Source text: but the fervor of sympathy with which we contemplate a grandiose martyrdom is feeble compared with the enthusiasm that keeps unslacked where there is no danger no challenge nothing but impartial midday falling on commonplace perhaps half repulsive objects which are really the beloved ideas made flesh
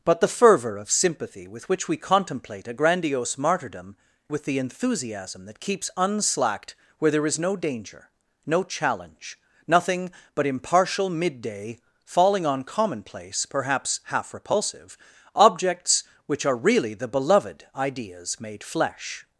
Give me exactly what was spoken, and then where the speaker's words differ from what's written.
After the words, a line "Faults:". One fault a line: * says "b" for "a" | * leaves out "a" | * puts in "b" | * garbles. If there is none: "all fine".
but the fervor of sympathy with which we contemplate a grandiose martyrdom with the enthusiasm that keeps unslacked where there is no danger no challenge nothing but impartial midday falling on commonplace perhaps half repulsive objects which are really the beloved ideas made flesh
Faults:
* leaves out "is feeble compared"